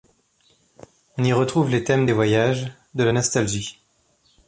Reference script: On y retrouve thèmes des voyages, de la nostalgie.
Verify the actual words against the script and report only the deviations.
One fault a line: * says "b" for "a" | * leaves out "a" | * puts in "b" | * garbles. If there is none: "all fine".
* puts in "les"